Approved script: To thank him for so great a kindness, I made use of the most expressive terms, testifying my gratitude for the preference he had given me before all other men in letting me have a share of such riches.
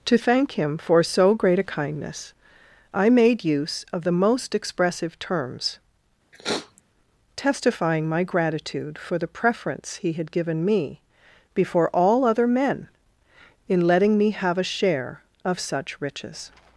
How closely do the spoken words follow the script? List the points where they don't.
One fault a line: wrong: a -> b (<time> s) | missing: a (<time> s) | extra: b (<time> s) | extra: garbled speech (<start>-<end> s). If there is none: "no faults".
no faults